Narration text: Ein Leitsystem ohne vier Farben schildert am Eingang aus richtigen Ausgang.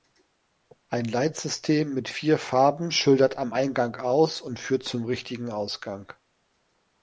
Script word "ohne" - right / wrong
wrong